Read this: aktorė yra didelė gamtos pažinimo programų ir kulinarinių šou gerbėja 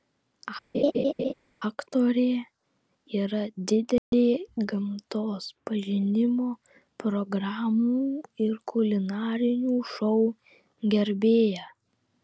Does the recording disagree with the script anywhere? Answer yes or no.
no